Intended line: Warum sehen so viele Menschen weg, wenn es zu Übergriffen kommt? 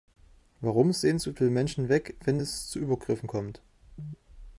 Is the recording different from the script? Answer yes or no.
no